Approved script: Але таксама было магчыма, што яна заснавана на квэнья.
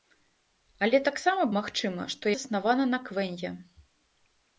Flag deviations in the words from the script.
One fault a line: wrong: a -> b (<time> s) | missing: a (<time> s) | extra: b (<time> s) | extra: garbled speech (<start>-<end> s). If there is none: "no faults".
missing: было (1.4 s)
missing: яна (2.3 s)